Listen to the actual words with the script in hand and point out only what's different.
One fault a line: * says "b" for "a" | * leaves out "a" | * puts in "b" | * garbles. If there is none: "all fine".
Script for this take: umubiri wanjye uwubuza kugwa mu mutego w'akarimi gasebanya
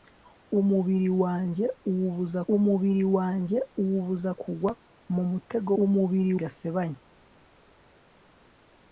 * puts in "umubiri wanjye uwubuza"
* says "umubiri" for "w'akarimi"